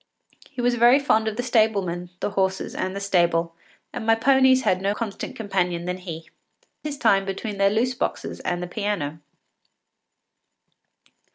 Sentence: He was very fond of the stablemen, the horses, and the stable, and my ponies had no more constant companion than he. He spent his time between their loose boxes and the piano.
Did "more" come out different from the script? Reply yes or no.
yes